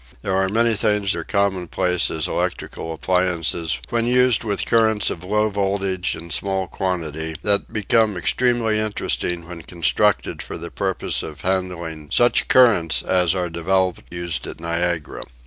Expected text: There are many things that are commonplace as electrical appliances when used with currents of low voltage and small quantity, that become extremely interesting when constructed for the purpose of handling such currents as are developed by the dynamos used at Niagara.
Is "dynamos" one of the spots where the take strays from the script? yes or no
yes